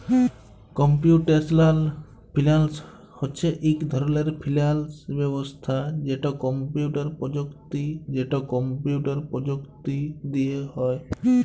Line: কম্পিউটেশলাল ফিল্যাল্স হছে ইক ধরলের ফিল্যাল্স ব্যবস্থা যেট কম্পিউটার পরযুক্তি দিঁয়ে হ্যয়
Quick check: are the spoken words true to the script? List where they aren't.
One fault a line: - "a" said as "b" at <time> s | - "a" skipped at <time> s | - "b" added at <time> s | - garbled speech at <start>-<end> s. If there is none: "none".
- "যেট কম্পিউটার পরযুক্তি" added at 8.1 s